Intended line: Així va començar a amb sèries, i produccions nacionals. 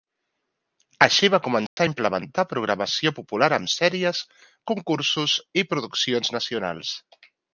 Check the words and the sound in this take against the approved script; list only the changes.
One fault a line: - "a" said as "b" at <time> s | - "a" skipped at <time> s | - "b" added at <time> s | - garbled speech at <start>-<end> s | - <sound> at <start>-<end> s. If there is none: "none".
- dropout at 1.7-1.8 s
- "implementar programació popular" added at 1.9 s
- "concursos" added at 4.7 s